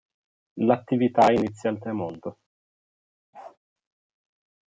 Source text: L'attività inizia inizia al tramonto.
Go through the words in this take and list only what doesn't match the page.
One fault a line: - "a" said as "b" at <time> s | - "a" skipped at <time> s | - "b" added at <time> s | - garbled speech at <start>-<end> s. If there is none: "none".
- "inizia" skipped at 1.7 s